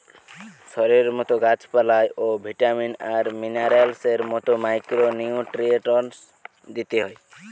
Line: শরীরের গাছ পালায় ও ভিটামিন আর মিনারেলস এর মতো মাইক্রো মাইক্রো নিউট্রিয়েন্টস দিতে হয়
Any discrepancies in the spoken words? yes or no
yes